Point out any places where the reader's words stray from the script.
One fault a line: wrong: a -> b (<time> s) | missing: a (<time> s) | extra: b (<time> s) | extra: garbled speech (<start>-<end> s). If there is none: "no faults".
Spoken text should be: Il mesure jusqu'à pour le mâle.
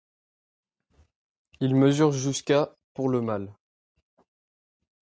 no faults